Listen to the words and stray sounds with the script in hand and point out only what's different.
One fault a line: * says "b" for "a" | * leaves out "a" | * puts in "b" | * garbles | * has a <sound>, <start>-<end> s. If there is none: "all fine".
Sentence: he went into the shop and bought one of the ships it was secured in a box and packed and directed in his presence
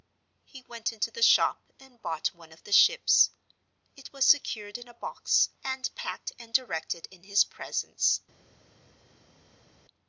all fine